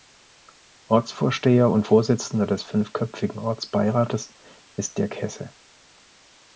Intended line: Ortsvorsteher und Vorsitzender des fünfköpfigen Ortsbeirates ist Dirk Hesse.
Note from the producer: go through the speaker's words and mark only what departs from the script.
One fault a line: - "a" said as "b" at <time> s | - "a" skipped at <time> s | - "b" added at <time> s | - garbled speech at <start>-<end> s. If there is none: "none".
none